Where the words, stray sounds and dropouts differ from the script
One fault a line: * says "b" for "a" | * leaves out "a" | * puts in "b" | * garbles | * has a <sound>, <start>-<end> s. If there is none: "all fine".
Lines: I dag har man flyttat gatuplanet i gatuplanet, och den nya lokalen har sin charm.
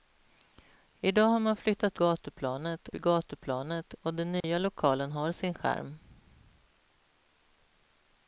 * has a dropout, 4.4-4.4 s